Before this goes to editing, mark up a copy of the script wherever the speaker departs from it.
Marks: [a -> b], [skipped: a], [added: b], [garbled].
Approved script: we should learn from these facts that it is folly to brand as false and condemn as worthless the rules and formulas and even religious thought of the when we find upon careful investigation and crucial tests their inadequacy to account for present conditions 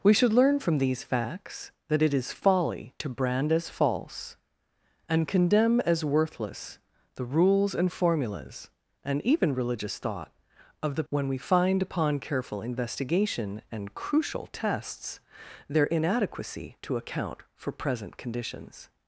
we should learn from these facts that it is folly to brand as false and condemn as worthless the rules and formulas and even religious thought of the when we find upon careful investigation and crucial tests their inadequacy to account for present conditions